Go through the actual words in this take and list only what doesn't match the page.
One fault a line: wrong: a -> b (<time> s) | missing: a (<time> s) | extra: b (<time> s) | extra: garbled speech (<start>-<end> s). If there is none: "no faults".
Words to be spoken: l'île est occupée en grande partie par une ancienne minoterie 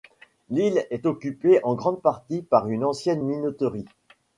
no faults